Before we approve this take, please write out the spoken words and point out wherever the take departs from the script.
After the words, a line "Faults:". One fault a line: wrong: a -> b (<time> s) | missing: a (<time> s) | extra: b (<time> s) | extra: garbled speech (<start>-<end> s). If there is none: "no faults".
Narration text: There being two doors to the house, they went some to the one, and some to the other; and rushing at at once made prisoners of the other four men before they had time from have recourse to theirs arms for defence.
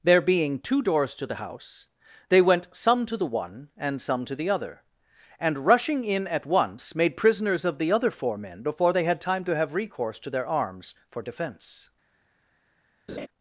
There being two doors to the house, they went some to the one, and some to the other; and rushing in at once made prisoners of the other four men before they had time to have recourse to their arms for defence.
Faults:
wrong: at -> in (6.0 s)
wrong: from -> to (9.4 s)
wrong: theirs -> their (10.3 s)